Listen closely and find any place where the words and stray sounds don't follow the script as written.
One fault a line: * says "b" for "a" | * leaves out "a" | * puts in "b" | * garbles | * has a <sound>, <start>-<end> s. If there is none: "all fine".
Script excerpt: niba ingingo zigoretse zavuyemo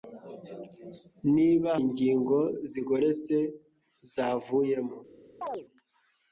* has a chirp, 5.4-5.7 s